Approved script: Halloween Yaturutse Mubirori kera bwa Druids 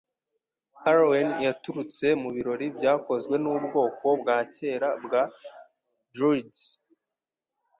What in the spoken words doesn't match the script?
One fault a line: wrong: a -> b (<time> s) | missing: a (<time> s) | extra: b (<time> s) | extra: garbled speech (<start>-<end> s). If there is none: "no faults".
extra: byakozwe nubwoko bwa (2.8 s)